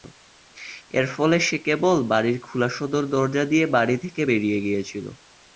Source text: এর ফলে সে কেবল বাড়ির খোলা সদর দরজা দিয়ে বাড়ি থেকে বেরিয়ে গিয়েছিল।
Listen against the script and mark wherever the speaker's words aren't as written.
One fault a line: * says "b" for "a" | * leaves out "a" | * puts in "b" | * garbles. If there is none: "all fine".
all fine